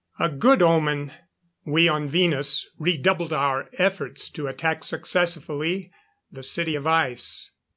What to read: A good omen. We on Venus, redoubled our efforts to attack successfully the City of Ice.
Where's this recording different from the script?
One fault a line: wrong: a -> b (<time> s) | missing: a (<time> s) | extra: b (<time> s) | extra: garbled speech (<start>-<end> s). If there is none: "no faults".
no faults